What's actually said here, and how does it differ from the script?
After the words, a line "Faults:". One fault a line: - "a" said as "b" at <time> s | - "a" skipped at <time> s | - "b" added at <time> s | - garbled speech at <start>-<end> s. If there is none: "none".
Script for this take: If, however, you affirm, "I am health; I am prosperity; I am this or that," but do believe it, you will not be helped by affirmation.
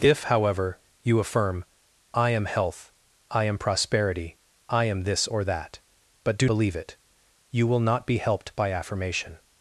If, however, you affirm, "I am health; I am prosperity; I am this or that," but do believe it, you will not be helped by affirmation.
Faults:
none